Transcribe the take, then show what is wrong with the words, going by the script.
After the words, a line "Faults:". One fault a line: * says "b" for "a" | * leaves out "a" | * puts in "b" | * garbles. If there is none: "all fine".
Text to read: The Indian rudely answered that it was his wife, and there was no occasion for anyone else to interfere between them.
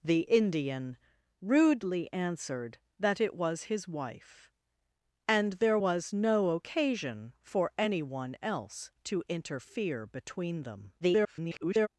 The Indian rudely answered that it was his wife, and there was no occasion for anyone else to interfere between them. [garbled]
Faults:
* garbles